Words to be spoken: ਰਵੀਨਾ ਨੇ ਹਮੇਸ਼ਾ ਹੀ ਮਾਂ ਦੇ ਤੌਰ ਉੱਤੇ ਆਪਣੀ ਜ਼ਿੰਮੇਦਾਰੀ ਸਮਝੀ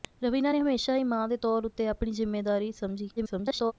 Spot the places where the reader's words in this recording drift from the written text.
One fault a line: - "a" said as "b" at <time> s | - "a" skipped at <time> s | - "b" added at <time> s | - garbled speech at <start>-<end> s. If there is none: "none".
- garbled speech at 3.2-3.7 s